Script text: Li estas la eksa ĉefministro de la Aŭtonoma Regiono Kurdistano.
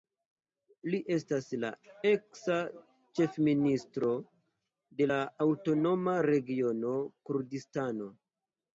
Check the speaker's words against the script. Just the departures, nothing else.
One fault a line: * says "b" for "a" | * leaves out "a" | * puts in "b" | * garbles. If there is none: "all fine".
all fine